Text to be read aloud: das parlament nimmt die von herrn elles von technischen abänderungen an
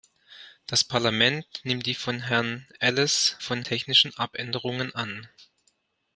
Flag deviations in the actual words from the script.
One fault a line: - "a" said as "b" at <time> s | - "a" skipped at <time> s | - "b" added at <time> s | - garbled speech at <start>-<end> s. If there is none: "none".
none